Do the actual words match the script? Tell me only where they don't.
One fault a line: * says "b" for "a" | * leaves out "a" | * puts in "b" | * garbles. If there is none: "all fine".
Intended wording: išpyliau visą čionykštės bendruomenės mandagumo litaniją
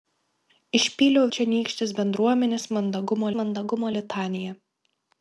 * leaves out "visą"
* puts in "mandagumo"